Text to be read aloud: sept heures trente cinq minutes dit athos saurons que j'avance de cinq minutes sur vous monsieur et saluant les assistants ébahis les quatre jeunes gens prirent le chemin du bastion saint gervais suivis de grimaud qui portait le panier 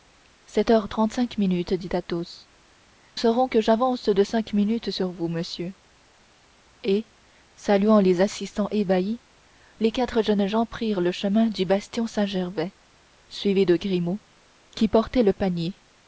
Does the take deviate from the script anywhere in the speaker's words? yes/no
no